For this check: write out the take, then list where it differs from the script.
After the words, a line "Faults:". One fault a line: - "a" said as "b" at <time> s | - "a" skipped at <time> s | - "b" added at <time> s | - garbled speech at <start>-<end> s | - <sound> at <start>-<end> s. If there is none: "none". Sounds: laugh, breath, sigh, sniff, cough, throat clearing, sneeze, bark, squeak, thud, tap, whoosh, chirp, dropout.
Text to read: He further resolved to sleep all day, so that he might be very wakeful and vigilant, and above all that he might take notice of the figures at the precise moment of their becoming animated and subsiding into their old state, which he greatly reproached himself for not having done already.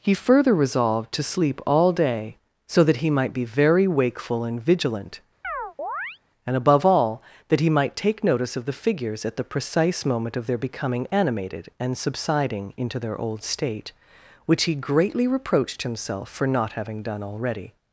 He further resolved to sleep all day, so that he might be very wakeful and vigilant, and above all that he might take notice of the figures at the precise moment of their becoming animated and subsiding into their old state, which he greatly reproached himself for not having done already.
Faults:
- chirp at 5.4-6.2 s